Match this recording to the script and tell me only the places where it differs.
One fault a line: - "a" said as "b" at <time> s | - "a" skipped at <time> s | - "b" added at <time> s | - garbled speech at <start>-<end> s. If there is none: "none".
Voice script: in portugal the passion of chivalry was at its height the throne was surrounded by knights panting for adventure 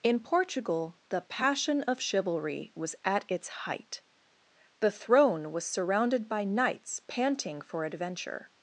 none